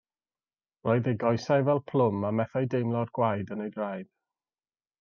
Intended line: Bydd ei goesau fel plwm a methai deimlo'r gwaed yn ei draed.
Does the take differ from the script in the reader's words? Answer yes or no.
yes